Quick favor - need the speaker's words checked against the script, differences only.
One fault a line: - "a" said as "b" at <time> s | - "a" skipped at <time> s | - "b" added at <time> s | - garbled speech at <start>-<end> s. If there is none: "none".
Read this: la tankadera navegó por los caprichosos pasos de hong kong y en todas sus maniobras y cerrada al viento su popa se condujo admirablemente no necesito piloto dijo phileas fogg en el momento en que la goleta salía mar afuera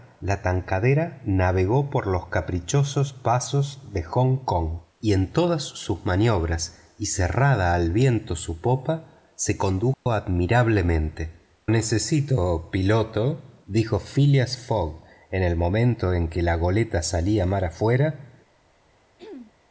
- "no" skipped at 11.6 s